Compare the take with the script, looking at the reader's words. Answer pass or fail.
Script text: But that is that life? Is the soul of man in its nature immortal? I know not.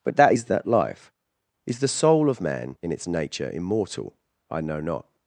pass